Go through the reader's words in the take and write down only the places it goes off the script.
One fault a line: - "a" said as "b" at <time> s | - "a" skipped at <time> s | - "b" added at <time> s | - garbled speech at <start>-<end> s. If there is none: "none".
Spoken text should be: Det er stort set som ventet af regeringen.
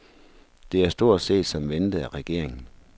none